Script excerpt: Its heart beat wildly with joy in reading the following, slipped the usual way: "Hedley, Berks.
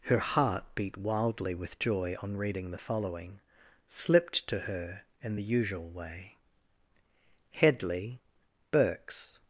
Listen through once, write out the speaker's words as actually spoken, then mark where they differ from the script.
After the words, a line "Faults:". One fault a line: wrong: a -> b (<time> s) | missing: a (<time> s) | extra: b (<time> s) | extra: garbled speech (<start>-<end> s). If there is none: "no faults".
Her heart beat wildly with joy on reading the following, slipped to her in the usual way: "Hedley, Berks.
Faults:
wrong: Its -> Her (0.1 s)
wrong: in -> on (2.2 s)
extra: to her in (4.5 s)